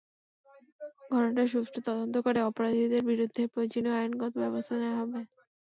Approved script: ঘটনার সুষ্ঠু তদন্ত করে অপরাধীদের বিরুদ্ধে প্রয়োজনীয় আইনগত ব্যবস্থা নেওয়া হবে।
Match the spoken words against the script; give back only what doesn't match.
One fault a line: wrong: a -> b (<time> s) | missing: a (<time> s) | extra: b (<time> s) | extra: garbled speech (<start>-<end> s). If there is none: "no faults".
no faults